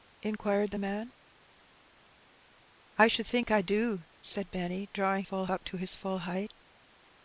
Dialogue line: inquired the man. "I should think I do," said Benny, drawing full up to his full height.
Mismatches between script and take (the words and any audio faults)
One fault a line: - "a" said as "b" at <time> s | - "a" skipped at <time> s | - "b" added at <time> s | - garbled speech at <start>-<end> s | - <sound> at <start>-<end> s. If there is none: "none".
none